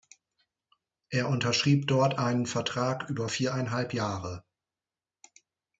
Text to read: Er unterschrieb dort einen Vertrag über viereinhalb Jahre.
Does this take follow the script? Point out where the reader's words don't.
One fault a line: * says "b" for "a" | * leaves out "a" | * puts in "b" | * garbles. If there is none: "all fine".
all fine